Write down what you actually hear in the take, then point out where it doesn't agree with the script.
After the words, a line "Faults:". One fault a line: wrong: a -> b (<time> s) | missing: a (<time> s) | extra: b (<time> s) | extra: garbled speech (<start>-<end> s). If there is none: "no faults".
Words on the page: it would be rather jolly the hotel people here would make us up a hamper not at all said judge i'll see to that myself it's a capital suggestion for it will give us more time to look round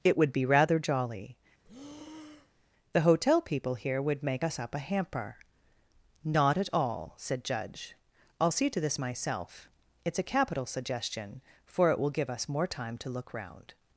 it would be rather jolly the hotel people here would make us up a hamper not at all said judge i'll see to this myself it's a capital suggestion for it will give us more time to look round
Faults:
wrong: that -> this (8.8 s)